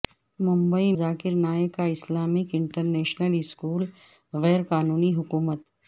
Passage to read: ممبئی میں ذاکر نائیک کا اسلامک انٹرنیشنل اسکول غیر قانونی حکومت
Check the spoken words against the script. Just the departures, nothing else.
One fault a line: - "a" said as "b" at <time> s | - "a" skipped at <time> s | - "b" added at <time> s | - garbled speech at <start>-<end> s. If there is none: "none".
- "میں" skipped at 0.9 s